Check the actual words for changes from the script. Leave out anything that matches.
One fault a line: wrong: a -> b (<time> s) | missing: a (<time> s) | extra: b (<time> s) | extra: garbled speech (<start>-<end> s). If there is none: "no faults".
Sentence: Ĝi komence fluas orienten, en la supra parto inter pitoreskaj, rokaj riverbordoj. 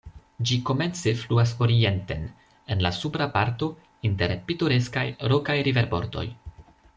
no faults